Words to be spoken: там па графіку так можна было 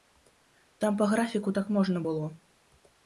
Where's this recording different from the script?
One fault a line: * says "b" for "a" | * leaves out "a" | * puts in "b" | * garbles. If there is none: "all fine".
all fine